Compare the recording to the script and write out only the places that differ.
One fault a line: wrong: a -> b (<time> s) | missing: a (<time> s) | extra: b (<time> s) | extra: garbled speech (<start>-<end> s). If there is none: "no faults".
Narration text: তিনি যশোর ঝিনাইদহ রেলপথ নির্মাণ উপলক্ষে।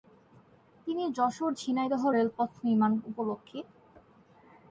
no faults